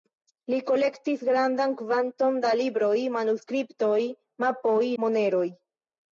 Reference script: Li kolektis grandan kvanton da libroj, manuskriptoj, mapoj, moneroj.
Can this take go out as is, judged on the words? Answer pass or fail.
pass